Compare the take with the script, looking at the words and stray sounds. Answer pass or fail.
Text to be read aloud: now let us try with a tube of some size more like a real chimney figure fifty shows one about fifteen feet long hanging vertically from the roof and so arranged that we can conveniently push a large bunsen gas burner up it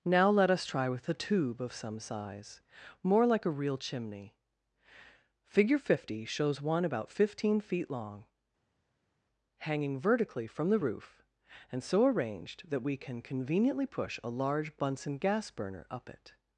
pass